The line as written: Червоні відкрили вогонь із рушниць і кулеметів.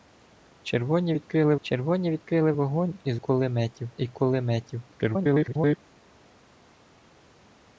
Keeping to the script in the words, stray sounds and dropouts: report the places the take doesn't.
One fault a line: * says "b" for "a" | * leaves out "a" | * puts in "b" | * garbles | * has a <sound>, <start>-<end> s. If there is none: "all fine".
* puts in "червоні відкрили"
* says "кулеметів" for "рушниць"
* garbles